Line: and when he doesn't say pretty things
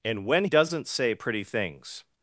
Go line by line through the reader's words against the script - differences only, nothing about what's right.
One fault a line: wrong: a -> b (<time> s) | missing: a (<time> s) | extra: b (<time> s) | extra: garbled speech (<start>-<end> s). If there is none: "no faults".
missing: he (0.5 s)